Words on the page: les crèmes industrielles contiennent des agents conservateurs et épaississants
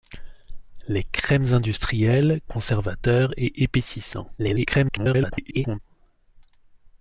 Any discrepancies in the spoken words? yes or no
yes